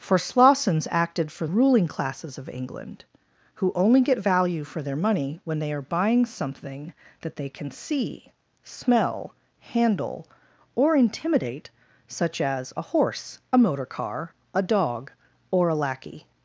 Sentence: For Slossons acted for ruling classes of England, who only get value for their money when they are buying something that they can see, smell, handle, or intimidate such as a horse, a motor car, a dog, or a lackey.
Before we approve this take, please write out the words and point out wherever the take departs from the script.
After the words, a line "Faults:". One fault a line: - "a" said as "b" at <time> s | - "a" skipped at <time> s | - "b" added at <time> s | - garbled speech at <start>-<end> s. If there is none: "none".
For Slossons acted for ruling classes of England, who only get value for their money when they are buying something that they can see, smell, handle, or intimidate such as a horse, a motor car, a dog, or a lackey.
Faults:
none